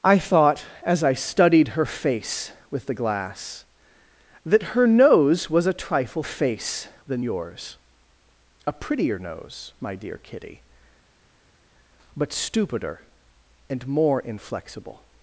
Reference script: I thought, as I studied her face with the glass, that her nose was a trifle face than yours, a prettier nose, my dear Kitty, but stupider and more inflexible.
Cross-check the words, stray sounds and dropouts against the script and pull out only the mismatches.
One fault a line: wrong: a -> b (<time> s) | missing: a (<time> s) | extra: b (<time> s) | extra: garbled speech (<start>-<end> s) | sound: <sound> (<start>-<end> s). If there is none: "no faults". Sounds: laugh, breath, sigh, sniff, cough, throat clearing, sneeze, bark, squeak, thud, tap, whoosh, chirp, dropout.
no faults